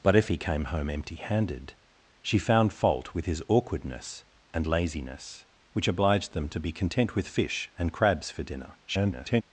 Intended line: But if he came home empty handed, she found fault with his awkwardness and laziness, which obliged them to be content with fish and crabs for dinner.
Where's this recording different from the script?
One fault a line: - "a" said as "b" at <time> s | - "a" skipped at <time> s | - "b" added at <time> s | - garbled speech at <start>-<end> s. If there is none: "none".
- garbled speech at 8.9-9.4 s